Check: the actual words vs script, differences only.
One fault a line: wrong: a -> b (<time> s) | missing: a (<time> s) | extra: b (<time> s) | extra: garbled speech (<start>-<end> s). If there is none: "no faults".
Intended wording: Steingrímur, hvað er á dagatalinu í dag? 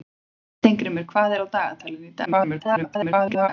extra: garbled speech (2.3-3.5 s)